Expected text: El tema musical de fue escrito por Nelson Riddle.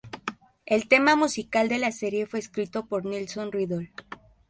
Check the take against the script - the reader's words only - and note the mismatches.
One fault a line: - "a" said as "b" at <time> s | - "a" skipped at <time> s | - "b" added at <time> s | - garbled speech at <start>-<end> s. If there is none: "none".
- "la serie" added at 1.8 s